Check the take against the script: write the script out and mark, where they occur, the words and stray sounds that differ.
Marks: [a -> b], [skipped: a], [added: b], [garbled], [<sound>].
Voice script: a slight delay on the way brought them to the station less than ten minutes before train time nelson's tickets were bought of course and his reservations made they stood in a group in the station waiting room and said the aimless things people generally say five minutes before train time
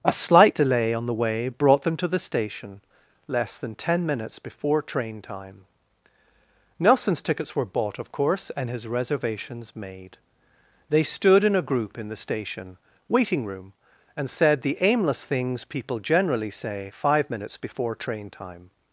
a slight delay on the way brought them to the station less than ten minutes before train time nelson's tickets were bought of course and his reservations made they stood in a group in the station waiting room and said the aimless things people generally say five minutes before train time